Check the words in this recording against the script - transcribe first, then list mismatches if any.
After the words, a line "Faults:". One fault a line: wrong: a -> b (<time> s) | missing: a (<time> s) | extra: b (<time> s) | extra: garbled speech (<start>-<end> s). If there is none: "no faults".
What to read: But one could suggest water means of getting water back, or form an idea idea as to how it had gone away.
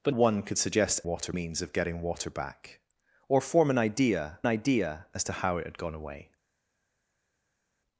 But one could suggest water means of getting water back, or form an idea idea as to how it had gone away.
Faults:
no faults